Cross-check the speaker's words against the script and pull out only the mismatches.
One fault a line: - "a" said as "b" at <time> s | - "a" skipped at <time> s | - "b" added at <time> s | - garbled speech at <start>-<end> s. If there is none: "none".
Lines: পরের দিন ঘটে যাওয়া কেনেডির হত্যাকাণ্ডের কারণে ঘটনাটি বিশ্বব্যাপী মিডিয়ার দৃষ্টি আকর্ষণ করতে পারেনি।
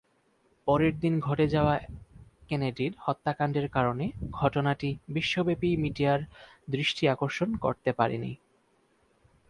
none